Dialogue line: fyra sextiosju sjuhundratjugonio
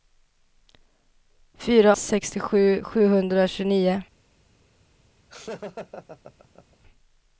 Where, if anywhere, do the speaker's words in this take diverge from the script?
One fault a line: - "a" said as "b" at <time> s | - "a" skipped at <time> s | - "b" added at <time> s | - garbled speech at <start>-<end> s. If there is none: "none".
none